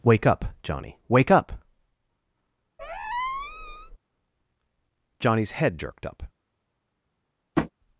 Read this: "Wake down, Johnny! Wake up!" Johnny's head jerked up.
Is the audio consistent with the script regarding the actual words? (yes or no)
no